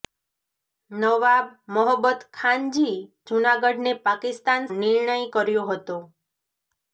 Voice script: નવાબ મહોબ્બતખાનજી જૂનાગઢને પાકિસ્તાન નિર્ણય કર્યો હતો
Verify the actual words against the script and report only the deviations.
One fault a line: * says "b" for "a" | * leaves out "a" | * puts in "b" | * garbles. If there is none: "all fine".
all fine